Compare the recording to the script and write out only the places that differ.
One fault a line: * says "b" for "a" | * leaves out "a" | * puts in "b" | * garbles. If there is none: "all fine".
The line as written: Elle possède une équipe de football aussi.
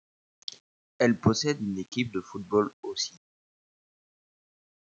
all fine